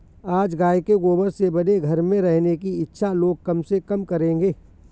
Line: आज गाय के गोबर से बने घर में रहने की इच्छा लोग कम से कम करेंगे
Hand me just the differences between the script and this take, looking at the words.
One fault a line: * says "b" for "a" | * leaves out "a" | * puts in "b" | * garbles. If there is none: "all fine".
all fine